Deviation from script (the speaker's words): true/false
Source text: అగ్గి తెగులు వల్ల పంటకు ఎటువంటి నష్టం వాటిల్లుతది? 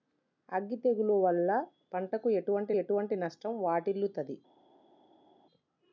true